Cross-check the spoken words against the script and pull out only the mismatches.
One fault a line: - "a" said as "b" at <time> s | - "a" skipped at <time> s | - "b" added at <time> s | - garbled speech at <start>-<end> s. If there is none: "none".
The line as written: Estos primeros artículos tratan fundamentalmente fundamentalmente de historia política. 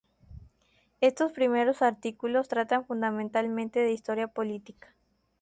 - "fundamentalmente" skipped at 3.8 s